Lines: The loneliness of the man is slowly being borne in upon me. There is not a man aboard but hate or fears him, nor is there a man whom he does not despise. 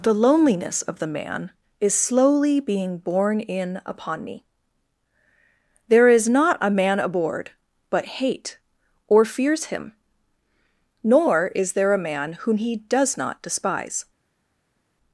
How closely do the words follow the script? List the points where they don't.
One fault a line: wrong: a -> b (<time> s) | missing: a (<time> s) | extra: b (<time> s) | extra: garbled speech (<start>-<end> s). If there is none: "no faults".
no faults